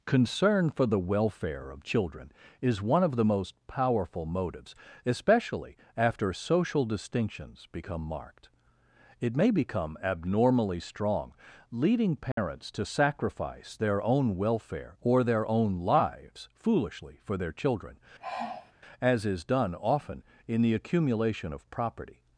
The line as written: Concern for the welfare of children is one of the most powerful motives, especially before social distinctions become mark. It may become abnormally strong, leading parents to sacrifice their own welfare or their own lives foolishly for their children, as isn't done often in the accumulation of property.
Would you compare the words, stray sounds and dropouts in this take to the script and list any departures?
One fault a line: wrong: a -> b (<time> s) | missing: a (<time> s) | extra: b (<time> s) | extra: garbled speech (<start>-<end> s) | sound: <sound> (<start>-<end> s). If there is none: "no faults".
wrong: before -> after (6.0 s)
wrong: mark -> marked (8.0 s)
sound: dropout (12.3-12.4 s)
sound: sigh (18.2-18.7 s)
wrong: isn't -> is (19.3 s)